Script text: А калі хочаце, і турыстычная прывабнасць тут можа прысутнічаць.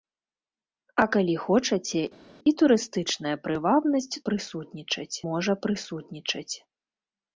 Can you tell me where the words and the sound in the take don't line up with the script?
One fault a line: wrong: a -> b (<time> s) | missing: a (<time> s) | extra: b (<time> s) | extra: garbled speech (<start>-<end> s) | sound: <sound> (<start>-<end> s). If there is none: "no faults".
wrong: тут -> прысутнічаць (4.3 s)